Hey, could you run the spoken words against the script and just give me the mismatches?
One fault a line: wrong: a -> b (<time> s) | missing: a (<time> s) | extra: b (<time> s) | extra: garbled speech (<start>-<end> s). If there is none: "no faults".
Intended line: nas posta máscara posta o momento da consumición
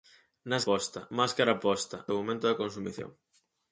no faults